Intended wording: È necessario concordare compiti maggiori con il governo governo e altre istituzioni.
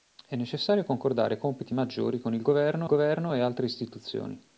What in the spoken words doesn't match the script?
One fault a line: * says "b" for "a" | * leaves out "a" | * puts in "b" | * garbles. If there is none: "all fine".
all fine